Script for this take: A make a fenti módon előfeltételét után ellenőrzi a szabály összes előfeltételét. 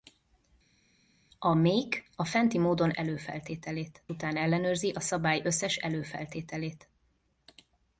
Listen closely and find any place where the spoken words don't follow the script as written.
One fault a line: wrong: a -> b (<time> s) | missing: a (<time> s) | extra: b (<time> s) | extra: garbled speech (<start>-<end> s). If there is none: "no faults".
no faults